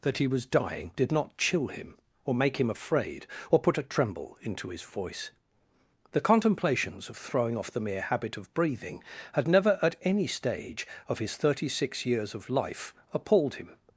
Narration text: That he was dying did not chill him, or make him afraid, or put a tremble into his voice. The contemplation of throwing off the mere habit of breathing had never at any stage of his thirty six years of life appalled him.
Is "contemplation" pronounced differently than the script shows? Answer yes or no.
yes